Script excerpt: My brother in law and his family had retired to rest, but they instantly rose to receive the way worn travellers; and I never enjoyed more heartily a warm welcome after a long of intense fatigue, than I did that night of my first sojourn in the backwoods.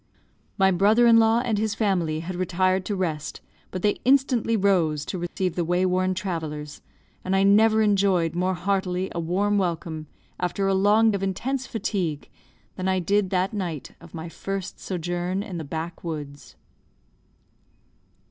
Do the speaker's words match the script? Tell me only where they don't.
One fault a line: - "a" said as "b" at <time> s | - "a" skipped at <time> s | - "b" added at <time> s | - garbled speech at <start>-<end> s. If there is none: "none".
none